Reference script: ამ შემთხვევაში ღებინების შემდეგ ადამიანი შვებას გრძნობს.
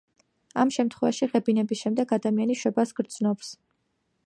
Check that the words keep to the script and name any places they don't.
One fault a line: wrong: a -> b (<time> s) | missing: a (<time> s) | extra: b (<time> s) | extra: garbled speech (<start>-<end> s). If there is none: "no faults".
no faults